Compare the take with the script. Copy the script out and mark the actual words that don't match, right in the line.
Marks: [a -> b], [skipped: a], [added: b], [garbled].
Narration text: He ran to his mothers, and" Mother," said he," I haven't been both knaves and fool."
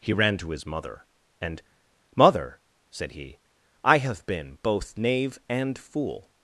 He ran to his [mothers, -> mother] and" Mother," said he," I [haven't -> have] been both [knaves -> knave] and fool."